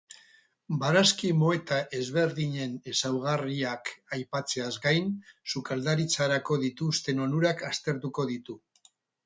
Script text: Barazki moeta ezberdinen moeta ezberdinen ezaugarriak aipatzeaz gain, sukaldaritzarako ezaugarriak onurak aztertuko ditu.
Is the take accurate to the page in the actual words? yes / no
no